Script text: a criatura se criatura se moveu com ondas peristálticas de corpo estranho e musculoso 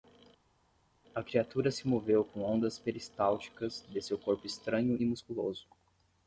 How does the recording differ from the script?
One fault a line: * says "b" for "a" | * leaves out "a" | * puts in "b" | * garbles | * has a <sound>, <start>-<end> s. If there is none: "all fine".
* leaves out "criatura se"
* puts in "seu"